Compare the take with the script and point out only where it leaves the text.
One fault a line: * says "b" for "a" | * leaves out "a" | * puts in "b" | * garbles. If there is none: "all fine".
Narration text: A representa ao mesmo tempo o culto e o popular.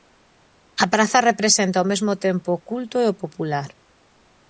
* puts in "praza"